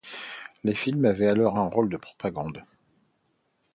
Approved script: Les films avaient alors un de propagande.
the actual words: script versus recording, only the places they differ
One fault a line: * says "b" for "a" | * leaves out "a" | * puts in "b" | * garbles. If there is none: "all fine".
* puts in "rôle"